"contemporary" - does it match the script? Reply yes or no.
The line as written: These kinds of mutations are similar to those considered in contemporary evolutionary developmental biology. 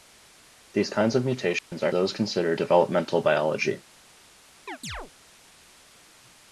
no